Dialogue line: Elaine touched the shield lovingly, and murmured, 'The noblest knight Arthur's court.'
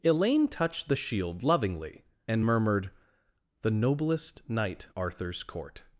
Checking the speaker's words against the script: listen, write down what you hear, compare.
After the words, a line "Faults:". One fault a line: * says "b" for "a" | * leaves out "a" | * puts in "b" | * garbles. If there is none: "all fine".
Elaine touched the shield lovingly, and murmured, 'The noblest knight Arthur's court.'
Faults:
all fine